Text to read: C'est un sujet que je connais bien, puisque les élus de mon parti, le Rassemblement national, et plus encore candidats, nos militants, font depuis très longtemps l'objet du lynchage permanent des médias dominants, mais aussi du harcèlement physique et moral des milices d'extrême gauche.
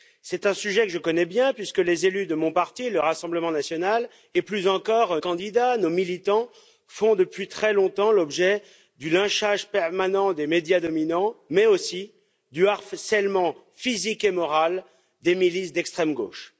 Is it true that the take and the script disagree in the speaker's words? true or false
false